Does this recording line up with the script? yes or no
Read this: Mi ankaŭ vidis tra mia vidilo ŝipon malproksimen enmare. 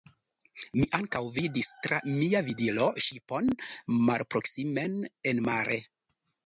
yes